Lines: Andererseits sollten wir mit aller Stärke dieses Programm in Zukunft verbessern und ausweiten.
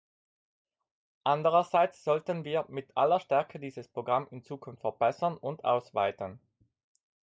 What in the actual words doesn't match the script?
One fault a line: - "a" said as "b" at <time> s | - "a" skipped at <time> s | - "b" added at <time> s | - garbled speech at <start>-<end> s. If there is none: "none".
none